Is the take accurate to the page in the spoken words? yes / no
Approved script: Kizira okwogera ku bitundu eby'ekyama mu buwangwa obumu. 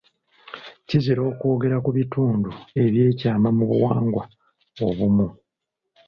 yes